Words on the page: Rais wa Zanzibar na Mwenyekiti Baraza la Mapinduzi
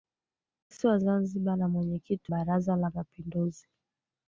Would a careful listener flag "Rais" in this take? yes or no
no